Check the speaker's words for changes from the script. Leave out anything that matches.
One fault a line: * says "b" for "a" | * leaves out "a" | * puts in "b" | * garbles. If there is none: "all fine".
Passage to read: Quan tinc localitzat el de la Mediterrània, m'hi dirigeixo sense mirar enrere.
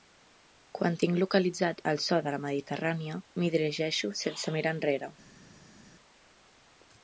* puts in "so"